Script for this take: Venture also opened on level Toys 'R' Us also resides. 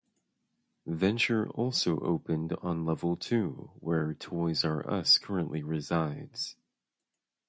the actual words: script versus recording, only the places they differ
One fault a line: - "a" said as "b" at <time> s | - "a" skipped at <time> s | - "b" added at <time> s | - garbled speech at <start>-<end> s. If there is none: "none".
- "two where" added at 3.1 s
- "also" said as "currently" at 5.2 s